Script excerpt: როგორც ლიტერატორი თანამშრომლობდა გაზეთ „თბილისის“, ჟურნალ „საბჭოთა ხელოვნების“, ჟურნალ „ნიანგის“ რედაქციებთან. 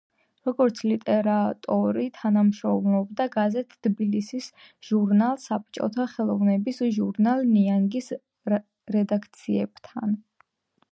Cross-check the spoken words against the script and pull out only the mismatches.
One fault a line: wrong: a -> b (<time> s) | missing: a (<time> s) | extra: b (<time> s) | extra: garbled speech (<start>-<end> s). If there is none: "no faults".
no faults